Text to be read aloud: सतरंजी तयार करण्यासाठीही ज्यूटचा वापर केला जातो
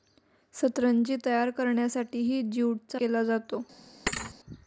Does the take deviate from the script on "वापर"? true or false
true